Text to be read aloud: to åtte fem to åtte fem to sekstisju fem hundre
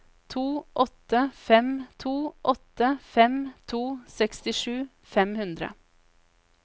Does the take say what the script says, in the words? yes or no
yes